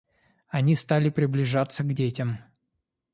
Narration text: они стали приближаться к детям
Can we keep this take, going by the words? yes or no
yes